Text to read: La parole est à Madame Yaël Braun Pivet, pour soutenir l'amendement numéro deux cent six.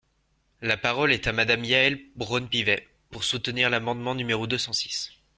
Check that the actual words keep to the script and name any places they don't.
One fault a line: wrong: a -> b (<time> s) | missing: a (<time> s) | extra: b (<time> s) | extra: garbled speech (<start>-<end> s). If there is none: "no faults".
no faults